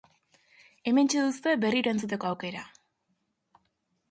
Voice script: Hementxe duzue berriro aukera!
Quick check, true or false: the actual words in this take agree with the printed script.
false